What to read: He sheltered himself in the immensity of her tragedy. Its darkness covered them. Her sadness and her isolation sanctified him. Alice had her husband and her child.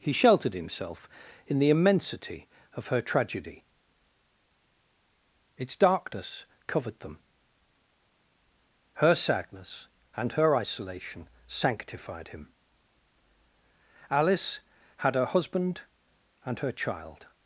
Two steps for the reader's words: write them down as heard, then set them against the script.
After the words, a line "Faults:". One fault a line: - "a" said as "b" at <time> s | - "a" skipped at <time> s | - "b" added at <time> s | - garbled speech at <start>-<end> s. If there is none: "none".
He sheltered himself in the immensity of her tragedy. Its darkness covered them. Her sadness and her isolation sanctified him. Alice had her husband and her child.
Faults:
none